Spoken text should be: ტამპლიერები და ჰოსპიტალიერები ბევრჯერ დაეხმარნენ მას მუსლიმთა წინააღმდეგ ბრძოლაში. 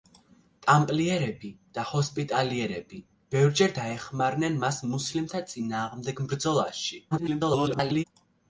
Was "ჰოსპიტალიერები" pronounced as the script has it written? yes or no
yes